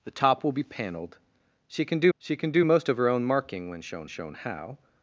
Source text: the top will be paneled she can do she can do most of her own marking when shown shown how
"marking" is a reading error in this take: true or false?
false